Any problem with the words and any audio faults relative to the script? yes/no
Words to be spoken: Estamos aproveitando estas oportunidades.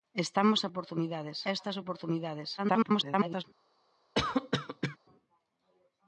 yes